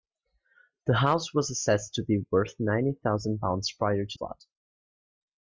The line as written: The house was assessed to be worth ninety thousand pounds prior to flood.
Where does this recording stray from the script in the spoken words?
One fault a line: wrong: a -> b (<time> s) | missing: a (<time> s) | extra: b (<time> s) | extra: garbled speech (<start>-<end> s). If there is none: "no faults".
no faults